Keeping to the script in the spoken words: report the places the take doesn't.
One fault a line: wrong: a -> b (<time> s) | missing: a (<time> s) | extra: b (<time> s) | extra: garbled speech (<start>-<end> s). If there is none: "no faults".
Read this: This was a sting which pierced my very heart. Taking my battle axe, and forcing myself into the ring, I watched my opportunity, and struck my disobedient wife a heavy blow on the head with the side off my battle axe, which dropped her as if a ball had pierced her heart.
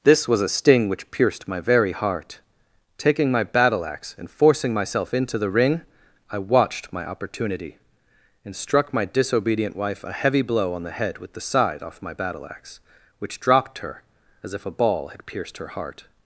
no faults